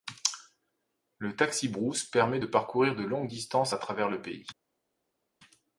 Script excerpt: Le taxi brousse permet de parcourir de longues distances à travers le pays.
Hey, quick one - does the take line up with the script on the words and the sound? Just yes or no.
yes